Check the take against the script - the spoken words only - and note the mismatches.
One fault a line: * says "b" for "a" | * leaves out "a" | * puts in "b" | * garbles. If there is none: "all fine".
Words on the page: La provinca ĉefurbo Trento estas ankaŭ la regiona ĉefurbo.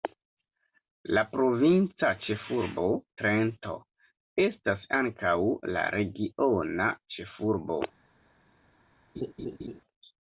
all fine